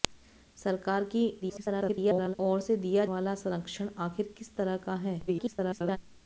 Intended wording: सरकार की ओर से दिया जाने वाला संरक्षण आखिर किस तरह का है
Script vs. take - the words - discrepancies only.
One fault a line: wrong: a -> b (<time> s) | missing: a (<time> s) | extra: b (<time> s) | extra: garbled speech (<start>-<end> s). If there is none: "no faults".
extra: garbled speech (1.4-2.4 s)
missing: जाने (3.0 s)
extra: garbled speech (5.3-6.0 s)